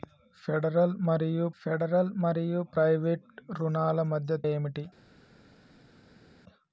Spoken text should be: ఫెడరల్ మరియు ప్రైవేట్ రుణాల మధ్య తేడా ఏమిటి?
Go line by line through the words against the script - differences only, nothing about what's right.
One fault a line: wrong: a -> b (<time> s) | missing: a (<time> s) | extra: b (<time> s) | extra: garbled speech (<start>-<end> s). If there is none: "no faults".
extra: ఫెడరల్ మరియు (1.6 s)
missing: తేడా (4.4 s)